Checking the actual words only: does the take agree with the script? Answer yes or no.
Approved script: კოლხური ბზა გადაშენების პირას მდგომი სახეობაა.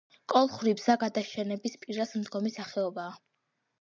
yes